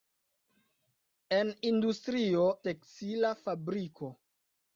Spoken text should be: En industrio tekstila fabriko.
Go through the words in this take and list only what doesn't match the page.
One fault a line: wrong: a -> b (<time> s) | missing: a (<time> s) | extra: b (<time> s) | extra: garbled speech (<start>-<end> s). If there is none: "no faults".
no faults